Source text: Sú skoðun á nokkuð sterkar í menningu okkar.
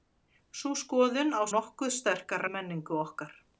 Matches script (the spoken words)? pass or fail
pass